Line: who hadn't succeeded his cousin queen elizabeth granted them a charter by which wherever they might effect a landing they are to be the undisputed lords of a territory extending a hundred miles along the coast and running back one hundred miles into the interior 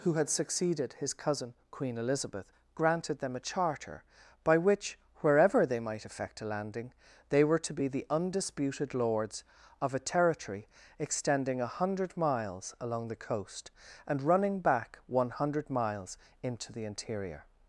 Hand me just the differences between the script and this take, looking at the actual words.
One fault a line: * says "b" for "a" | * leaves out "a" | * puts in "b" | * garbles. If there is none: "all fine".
* says "had" for "hadn't"
* says "were" for "are"